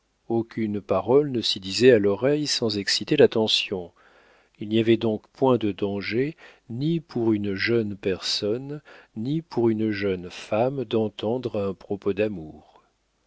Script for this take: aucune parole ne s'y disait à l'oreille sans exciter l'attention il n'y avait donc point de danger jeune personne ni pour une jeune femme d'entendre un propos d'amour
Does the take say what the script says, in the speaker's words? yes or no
no